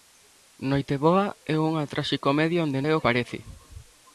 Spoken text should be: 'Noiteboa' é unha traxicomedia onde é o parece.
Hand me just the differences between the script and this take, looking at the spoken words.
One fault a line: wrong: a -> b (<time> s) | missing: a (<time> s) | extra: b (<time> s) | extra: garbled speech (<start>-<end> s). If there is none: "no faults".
no faults